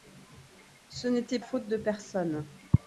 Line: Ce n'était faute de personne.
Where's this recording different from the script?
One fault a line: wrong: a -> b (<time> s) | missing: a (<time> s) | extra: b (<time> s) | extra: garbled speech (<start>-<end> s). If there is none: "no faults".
no faults